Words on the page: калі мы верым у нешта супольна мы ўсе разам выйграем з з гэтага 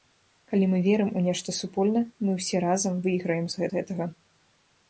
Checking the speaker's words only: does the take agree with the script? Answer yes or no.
yes